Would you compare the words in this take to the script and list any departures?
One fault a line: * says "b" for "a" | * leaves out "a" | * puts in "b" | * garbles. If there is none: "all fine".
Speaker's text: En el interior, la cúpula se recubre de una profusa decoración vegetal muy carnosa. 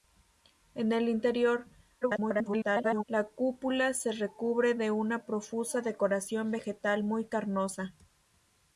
* garbles